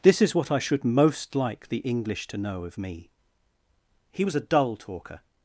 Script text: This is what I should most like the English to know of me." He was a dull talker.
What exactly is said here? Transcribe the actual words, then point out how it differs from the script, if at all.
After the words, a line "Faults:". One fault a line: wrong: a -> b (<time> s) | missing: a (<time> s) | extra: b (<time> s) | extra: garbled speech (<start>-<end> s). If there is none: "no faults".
This is what I should most like the English to know of me." He was a dull talker.
Faults:
no faults